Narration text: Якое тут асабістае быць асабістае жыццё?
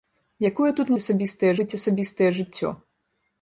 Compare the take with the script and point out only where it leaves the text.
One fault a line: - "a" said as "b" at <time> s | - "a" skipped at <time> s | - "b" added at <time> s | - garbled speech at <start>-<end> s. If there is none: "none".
none